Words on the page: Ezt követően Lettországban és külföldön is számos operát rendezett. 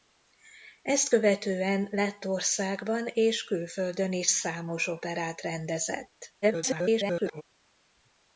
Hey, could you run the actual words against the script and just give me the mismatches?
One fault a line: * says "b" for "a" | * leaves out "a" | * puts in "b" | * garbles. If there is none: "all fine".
* garbles